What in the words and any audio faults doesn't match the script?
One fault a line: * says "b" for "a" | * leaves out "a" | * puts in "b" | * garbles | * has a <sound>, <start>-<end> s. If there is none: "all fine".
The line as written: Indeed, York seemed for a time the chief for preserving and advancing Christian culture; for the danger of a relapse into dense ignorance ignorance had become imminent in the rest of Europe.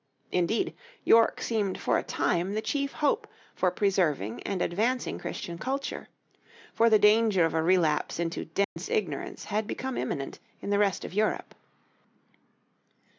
* puts in "hope"
* has a dropout, 8.6-8.8 s
* leaves out "ignorance"